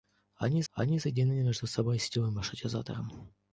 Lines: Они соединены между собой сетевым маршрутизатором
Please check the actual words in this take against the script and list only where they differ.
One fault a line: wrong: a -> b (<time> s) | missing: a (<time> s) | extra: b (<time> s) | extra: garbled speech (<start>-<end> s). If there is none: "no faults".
extra: они (0.7 s)